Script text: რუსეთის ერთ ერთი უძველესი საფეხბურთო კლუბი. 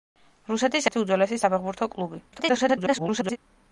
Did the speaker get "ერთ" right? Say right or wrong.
wrong